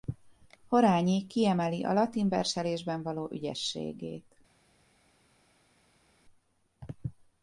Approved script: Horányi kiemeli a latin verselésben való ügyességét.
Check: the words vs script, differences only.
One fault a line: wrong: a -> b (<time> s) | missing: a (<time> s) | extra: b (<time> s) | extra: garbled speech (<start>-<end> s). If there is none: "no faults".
no faults